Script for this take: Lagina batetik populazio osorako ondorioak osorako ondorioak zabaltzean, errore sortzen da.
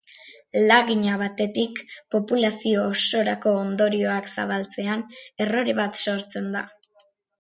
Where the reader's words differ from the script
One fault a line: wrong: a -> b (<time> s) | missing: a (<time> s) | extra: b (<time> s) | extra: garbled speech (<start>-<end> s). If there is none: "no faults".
missing: osorako ondorioak (4.3 s)
extra: bat (5.8 s)